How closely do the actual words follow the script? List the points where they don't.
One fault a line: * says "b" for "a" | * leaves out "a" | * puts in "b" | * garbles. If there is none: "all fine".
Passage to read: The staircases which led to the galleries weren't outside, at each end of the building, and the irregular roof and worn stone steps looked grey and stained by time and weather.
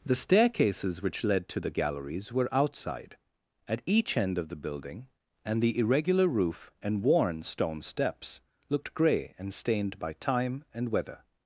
* says "were" for "weren't"